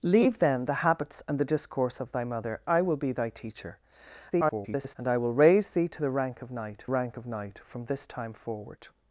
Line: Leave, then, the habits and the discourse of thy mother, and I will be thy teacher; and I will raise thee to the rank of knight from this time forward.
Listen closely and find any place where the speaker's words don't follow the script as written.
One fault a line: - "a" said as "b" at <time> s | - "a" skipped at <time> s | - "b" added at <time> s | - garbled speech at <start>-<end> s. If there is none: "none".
- "and" skipped at 2.6 s
- garbled speech at 4.3-5.0 s
- "rank of knight" added at 6.8 s